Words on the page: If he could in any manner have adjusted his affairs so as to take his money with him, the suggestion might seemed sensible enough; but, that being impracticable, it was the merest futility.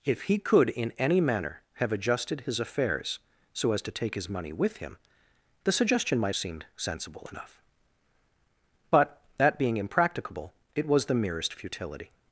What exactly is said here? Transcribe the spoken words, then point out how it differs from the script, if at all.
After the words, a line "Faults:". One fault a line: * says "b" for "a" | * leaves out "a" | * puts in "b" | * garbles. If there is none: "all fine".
If he could in any manner have adjusted his affairs so as to take his money with him, the suggestion might seemed sensible enough; but, that being impracticable, it was the merest futility.
Faults:
all fine